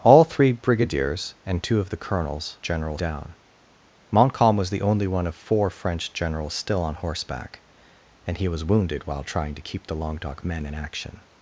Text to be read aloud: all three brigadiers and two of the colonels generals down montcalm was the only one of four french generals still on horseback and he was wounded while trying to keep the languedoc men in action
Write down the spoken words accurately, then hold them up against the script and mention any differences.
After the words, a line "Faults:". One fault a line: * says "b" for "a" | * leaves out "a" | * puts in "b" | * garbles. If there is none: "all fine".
all three brigadiers and two of the colonels generals down montcalm was the only one of four french generals still on horseback and he was wounded while trying to keep the languedoc men in action
Faults:
all fine